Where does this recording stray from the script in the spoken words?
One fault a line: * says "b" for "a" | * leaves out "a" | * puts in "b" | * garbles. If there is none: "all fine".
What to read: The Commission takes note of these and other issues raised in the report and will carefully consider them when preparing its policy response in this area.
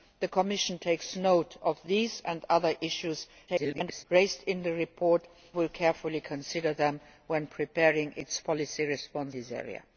* garbles
* leaves out "and"
* leaves out "in"